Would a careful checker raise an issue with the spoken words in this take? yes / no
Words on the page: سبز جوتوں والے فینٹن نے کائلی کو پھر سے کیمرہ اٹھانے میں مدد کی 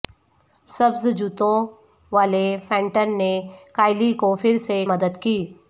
yes